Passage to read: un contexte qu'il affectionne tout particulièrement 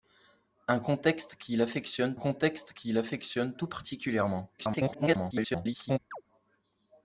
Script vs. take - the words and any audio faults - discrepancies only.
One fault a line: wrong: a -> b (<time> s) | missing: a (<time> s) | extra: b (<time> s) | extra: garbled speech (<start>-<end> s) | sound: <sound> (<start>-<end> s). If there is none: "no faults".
extra: contexte qu'il affectionne (2.2 s)
extra: garbled speech (4.6-6.0 s)
sound: chirp (6.1-6.2 s)